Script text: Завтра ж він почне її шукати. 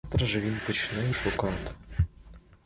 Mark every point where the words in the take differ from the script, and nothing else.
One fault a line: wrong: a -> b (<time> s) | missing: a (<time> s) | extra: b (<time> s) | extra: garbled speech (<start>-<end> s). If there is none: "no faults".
missing: її (1.0 s)